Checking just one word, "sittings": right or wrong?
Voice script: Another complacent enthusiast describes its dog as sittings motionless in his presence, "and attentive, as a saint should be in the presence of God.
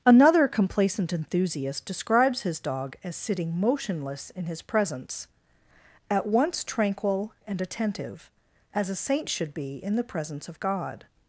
wrong